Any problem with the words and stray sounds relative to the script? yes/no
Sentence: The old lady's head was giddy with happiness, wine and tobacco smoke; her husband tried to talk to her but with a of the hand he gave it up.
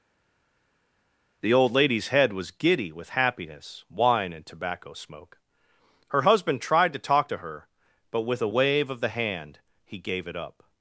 yes